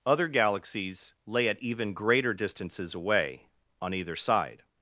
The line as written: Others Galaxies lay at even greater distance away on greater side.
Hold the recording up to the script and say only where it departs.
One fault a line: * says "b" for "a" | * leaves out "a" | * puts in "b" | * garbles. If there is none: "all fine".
* says "Other" for "Others"
* says "distances" for "distance"
* says "either" for "greater"